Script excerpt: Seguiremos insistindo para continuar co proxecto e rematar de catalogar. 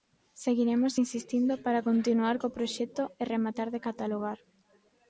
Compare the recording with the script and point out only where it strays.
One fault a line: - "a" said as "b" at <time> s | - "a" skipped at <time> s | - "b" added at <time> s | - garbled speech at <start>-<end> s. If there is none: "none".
none